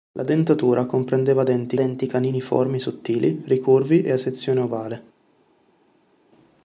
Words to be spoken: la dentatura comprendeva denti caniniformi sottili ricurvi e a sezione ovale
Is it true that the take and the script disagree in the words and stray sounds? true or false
true